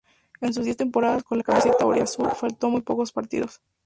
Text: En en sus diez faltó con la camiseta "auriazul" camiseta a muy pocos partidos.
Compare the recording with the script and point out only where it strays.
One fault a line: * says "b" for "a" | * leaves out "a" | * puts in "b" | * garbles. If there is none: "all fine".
* leaves out "en"
* says "temporadas" for "faltó"
* says "faltó" for "camiseta"